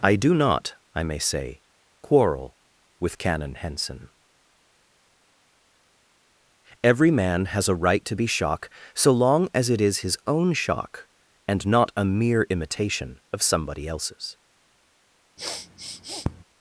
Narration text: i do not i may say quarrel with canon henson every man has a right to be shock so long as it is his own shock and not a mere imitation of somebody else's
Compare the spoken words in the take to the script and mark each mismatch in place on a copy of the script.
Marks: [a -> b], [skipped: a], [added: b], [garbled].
i do not i may say quarrel with canon henson every man has a right to be shock so long as it is his own shock and not a mere imitation of somebody else's